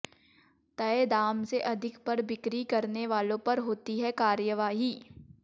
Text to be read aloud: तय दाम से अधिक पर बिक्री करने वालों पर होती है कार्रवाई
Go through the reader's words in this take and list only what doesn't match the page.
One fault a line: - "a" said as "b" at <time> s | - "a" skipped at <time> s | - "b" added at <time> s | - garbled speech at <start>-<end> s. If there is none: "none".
none